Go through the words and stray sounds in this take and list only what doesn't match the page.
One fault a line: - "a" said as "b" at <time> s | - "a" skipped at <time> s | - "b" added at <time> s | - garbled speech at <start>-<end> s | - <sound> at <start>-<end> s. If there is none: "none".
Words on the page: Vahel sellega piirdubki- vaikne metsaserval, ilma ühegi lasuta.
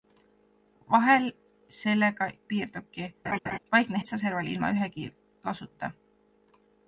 - laugh at 3.2-3.6 s